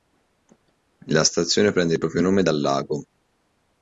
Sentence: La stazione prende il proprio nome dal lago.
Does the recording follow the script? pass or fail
pass